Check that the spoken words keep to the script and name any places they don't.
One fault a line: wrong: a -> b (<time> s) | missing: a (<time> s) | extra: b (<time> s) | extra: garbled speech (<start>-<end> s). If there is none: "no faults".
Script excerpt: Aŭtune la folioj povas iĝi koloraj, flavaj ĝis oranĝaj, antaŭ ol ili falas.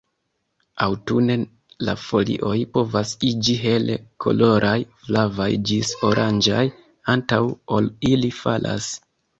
extra: hele (3.6 s)